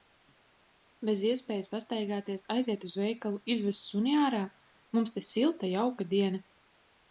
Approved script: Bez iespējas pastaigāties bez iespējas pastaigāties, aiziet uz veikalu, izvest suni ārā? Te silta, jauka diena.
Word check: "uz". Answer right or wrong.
right